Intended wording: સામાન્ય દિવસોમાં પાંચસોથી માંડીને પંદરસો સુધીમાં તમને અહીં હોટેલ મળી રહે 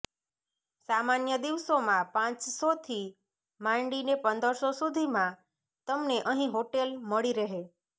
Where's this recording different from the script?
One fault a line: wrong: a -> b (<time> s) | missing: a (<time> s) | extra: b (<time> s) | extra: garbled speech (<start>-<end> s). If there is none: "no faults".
no faults